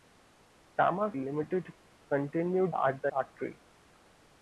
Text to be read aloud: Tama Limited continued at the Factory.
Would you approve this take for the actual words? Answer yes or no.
yes